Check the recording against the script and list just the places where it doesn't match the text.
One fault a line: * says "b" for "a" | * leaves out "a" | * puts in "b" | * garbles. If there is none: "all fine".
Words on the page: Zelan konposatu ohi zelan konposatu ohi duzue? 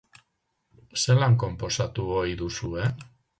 * leaves out "zelan konposatu ohi"